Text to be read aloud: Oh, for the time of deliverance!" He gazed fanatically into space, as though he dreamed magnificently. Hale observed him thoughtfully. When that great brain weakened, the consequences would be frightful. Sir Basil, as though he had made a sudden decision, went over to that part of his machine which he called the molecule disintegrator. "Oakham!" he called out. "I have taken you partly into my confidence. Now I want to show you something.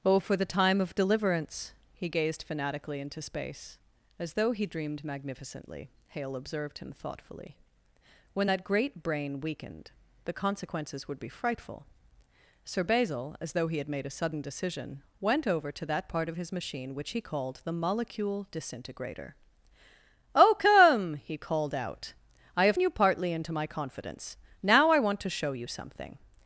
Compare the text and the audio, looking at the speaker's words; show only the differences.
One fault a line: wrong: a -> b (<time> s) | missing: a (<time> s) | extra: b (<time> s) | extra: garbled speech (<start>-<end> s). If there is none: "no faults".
missing: taken (22.8 s)